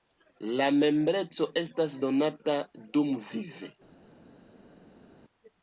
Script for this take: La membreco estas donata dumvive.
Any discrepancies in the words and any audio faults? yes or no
no